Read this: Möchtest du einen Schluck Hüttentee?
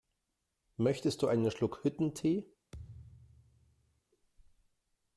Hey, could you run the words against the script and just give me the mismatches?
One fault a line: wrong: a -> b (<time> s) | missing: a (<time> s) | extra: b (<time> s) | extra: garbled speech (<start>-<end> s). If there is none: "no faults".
no faults